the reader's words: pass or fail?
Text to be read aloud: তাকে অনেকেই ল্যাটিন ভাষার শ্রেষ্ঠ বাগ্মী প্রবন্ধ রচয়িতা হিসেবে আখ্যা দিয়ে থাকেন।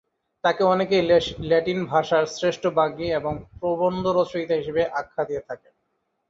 fail